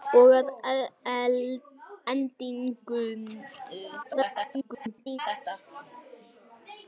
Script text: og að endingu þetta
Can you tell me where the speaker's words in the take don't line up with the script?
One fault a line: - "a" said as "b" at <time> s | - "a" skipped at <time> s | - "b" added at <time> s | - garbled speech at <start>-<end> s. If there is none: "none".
- garbled speech at 4.0-5.2 s